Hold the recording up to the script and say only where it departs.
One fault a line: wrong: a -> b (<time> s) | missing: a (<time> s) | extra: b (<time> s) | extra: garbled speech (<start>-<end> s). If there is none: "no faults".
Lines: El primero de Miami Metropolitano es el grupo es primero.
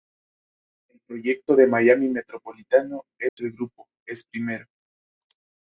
wrong: primero -> proyecto (1.1 s)